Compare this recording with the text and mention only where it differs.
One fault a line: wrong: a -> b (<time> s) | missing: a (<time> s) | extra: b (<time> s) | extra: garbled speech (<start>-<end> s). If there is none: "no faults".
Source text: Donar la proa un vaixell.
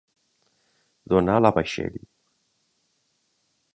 missing: proa un (1.5 s)